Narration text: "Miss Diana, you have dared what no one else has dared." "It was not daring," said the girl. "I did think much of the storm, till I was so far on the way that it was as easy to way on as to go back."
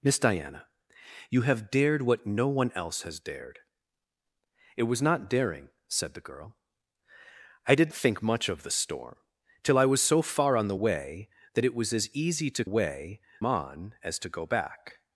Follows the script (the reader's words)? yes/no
yes